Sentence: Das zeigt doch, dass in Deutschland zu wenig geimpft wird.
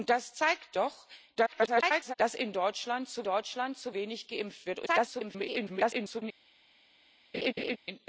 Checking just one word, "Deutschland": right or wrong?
right